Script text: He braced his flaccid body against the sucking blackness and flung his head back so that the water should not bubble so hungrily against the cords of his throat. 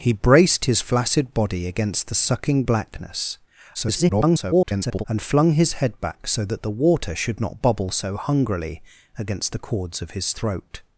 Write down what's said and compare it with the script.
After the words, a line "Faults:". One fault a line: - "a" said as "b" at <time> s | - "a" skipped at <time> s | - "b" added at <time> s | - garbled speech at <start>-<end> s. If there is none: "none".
He braced his flaccid body against the sucking blackness [garbled] and flung his head back so that the water should not bubble so hungrily against the cords of his throat.
Faults:
- garbled speech at 3.7-5.0 s